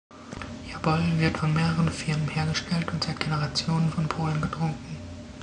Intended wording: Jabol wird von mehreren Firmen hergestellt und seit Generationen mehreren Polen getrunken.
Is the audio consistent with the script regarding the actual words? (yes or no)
no